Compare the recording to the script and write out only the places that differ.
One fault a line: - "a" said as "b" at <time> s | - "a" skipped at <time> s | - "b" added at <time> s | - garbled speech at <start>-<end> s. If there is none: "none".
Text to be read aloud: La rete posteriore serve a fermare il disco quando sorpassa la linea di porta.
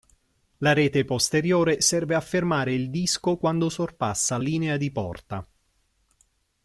- "la" skipped at 4.4 s